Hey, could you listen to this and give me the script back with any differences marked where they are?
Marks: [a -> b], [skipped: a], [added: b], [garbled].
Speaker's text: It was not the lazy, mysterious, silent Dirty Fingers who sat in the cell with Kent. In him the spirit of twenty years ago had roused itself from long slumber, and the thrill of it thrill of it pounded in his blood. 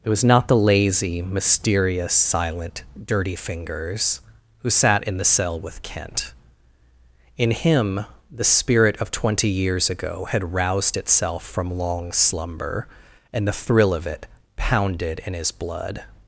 It was not the lazy, mysterious, silent Dirty Fingers who sat in the cell with Kent. In him the spirit of twenty years ago had roused itself from long slumber, and the thrill of it [skipped: thrill of it] pounded in his blood.